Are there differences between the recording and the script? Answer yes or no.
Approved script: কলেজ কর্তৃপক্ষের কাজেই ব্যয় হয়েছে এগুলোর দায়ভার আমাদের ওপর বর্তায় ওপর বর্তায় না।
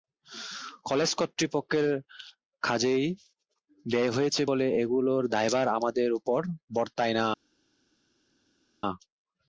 yes